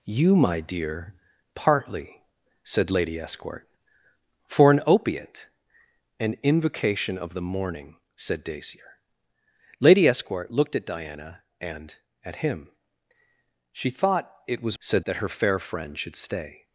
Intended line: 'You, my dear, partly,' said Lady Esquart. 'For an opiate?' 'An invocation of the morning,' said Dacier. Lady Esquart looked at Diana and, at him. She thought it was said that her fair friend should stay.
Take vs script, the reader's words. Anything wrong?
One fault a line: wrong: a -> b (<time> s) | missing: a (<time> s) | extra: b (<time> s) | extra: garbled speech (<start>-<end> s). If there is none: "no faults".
no faults